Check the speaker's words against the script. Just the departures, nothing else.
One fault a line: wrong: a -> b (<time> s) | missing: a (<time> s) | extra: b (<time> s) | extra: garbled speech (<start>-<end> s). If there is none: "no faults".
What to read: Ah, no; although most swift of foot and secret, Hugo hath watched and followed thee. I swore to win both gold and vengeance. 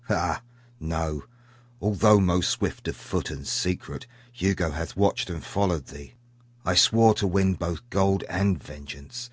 no faults